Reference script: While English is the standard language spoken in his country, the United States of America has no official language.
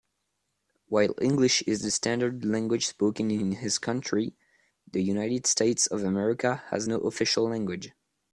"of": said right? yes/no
yes